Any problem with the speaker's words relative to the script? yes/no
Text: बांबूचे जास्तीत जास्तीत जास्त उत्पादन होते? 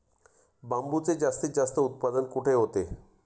yes